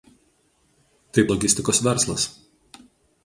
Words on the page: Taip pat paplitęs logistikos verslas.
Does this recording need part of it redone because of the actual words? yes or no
yes